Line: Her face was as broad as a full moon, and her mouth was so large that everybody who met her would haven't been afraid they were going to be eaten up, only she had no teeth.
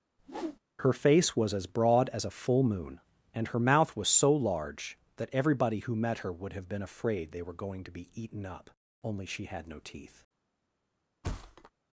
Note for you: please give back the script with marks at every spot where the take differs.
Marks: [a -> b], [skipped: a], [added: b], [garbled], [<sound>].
[whoosh] Her face was as broad as a full moon, and her mouth was so large that everybody who met her would [haven't -> have] been afraid they were going to be eaten up, only she had no teeth. [thud]